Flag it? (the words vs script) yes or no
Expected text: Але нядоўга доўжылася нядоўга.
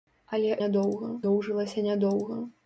no